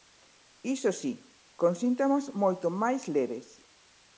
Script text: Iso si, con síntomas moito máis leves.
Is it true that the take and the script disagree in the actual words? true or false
false